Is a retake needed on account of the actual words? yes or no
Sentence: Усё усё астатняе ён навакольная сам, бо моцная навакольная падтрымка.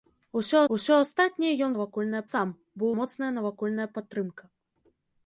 no